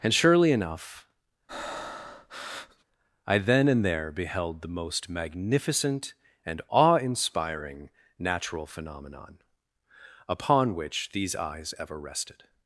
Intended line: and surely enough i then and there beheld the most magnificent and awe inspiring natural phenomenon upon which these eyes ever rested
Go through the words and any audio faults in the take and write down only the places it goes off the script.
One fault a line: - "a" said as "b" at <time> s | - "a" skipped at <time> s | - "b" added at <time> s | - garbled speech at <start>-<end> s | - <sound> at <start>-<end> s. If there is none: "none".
- breath at 1.5-2.8 s